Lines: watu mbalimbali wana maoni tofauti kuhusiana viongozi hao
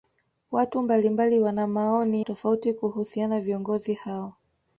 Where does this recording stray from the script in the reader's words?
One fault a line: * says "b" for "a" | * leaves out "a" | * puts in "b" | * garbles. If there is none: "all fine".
all fine